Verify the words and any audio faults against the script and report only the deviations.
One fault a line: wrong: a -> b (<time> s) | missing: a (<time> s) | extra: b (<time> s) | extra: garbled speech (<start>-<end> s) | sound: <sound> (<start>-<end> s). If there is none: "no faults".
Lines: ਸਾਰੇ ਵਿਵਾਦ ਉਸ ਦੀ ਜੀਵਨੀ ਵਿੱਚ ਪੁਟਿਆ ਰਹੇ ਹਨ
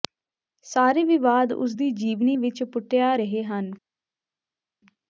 no faults